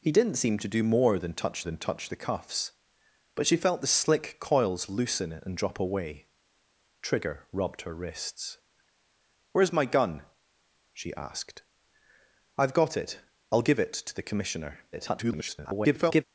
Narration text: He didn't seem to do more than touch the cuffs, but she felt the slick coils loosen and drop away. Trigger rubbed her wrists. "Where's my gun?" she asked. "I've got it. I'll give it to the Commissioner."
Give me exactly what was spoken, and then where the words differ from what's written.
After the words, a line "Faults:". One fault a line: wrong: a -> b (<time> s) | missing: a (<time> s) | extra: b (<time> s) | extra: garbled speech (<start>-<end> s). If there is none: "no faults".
He didn't seem to do more than touch than touch the cuffs, but she felt the slick coils loosen and drop away. Trigger rubbed her wrists. "Where's my gun?" she asked. "I've got it. I'll give it to the Commissioner." [garbled]
Faults:
extra: than touch (1.6 s)
extra: garbled speech (14.9-16.2 s)